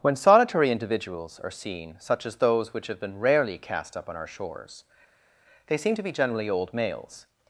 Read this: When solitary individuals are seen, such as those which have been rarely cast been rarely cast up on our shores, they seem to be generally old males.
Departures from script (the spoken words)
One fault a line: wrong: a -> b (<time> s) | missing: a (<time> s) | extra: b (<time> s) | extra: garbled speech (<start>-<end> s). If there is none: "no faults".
missing: been rarely cast (4.0 s)